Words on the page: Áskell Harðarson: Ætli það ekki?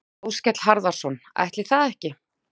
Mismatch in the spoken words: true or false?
false